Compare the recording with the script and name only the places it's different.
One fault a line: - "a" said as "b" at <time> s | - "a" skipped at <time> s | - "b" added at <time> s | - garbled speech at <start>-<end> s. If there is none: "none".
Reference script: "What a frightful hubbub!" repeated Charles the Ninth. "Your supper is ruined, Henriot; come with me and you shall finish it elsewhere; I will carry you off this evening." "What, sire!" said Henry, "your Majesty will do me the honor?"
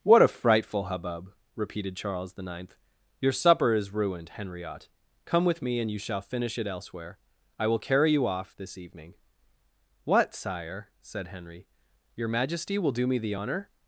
none